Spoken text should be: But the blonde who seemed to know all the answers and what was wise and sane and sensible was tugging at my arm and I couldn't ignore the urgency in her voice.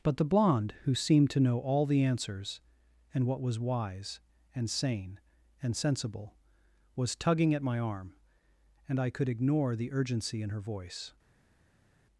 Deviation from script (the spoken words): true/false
true